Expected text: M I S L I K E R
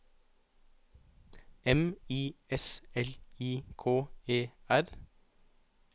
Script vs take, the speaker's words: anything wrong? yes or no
no